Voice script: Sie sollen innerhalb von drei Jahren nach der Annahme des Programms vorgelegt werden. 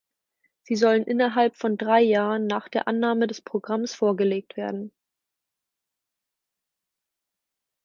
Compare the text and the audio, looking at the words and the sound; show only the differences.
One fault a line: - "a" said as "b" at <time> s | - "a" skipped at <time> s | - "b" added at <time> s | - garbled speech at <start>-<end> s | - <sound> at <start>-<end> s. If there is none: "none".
none